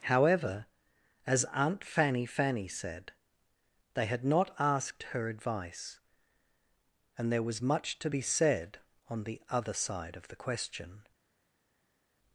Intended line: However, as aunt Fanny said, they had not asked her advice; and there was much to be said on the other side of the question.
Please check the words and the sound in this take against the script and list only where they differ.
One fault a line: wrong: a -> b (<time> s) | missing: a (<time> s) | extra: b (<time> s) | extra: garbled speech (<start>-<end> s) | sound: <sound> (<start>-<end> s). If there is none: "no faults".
extra: Fanny (2.2 s)